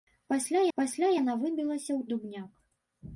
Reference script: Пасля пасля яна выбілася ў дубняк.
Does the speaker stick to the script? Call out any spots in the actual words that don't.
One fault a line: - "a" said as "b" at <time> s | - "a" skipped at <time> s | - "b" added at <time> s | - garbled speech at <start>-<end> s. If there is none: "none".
none